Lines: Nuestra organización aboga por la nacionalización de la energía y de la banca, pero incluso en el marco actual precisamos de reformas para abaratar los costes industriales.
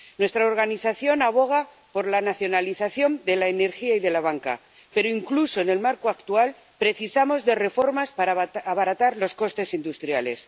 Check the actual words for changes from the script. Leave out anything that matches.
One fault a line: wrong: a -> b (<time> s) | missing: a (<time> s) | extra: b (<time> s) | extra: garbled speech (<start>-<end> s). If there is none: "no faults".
no faults